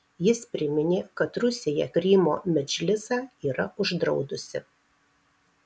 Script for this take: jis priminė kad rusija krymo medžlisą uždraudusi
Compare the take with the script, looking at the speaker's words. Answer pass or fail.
fail